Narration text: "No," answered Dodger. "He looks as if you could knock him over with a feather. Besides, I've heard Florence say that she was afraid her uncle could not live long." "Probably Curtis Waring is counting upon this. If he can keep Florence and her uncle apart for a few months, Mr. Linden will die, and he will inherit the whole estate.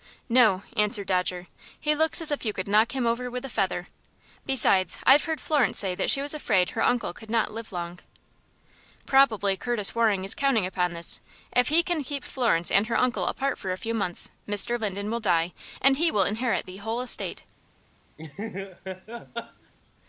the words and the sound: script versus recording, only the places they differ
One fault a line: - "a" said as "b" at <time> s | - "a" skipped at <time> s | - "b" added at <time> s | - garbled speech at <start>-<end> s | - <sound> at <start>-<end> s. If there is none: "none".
- laugh at 18.2-19.7 s